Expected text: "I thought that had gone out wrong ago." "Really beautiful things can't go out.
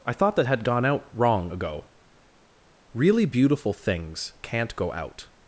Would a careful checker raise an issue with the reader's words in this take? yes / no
no